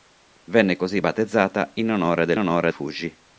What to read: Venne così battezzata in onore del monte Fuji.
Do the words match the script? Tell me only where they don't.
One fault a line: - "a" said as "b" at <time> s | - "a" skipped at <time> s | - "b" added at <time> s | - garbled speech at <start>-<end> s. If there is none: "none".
- "monte" said as "onore" at 2.4 s